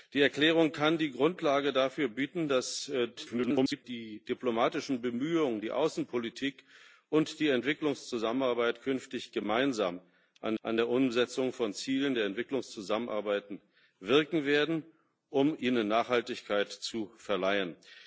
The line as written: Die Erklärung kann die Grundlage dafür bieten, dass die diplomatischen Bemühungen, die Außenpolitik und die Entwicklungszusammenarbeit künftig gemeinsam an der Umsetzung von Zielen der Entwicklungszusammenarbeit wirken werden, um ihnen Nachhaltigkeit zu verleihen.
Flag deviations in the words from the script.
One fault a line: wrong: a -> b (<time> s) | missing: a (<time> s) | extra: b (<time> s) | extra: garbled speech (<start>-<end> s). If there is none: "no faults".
extra: garbled speech (3.2-3.8 s)
extra: an (10.6 s)